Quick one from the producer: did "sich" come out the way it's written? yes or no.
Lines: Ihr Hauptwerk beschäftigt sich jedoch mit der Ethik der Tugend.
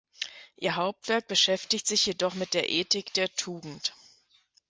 yes